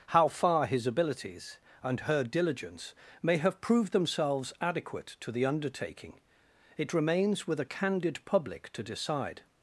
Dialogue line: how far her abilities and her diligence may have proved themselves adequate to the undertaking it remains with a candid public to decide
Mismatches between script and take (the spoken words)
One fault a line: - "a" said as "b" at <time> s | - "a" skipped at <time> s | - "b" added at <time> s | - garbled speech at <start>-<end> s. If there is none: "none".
- "her" said as "his" at 0.7 s